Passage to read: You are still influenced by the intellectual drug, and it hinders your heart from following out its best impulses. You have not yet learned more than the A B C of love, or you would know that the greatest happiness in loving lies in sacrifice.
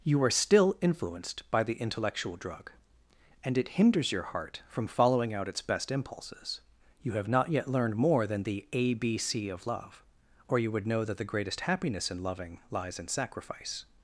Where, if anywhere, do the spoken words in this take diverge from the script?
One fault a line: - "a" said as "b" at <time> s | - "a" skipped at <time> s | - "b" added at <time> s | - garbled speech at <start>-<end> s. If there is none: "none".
none